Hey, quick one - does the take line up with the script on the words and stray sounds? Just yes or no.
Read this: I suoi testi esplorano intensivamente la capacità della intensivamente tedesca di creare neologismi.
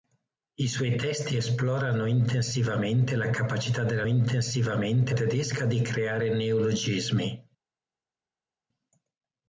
yes